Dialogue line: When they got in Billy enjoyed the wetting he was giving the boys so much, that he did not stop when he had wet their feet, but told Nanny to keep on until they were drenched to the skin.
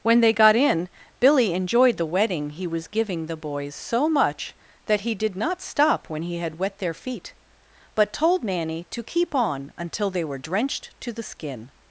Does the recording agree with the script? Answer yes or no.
yes